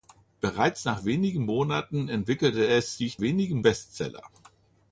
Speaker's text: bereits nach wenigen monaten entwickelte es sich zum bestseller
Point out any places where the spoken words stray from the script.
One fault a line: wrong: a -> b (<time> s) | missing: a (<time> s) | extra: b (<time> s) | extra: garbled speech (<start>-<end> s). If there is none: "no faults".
wrong: zum -> wenigen (3.2 s)